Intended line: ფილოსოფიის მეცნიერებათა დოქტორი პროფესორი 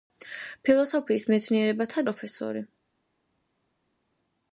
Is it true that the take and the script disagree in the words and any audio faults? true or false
true